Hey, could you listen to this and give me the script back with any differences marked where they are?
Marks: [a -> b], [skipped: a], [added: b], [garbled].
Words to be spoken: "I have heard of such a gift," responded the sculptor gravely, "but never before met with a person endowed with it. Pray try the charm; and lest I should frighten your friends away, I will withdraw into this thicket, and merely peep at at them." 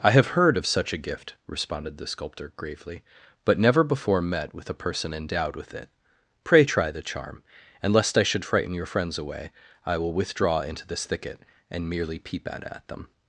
"I have heard of such a gift," responded the sculptor gravely, "but never before met with a person endowed with it. Pray try the charm; and lest I should frighten your friends away, I will withdraw into this thicket, and merely peep at at them."